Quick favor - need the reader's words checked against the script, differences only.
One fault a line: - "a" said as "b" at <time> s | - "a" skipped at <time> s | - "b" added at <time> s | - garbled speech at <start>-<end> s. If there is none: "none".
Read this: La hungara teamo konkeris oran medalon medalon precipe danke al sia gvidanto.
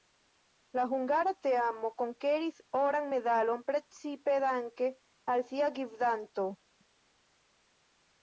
- "medalon" skipped at 3.7 s